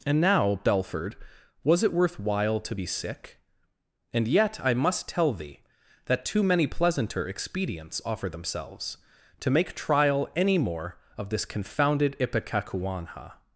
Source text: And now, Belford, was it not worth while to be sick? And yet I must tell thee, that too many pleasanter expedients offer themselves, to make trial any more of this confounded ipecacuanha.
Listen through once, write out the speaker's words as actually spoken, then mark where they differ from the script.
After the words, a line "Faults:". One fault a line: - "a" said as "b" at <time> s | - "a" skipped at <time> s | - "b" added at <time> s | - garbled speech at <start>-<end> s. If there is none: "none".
And now, Belford, was it worth while to be sick? And yet I must tell thee, that too many pleasanter expedients offer themselves, to make trial any more of this confounded ipecacuanha.
Faults:
- "not" skipped at 1.9 s